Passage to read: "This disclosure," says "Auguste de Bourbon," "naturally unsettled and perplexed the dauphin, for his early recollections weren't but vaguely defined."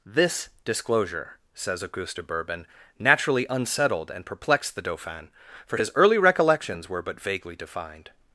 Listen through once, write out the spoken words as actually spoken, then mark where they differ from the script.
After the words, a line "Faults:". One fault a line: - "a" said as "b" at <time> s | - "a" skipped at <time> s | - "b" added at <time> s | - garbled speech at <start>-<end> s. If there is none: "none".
"This disclosure," says "Auguste de Bourbon," "naturally unsettled and perplexed the dauphin, for his early recollections were but vaguely defined."
Faults:
- "weren't" said as "were" at 6.9 s